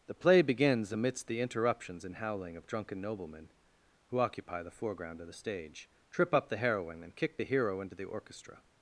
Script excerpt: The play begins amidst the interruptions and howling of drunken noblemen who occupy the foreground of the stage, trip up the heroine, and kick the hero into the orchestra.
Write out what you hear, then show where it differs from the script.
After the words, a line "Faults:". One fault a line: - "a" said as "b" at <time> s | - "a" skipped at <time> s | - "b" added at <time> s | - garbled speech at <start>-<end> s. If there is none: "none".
The play begins amidst the interruptions and howling of drunken noblemen who occupy the foreground of the stage, trip up the heroine, and kick the hero into the orchestra.
Faults:
none